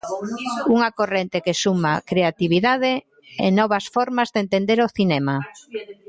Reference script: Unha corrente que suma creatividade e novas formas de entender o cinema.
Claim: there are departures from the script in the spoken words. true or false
false